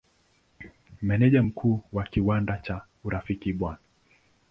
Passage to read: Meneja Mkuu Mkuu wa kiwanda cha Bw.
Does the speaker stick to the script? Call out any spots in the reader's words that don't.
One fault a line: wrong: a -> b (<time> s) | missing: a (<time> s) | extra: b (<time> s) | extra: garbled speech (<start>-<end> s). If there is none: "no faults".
missing: Mkuu (1.8 s)
extra: Urafiki (3.0 s)